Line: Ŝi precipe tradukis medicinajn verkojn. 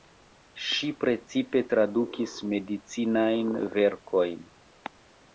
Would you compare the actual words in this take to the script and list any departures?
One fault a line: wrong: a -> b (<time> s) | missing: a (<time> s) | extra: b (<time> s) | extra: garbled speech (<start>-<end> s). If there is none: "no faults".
no faults